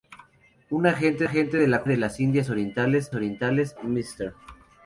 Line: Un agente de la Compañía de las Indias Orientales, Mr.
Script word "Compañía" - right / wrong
wrong